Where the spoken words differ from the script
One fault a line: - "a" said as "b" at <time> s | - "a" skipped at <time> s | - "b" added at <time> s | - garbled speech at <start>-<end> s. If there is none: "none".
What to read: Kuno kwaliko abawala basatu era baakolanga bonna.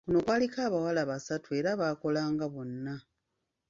none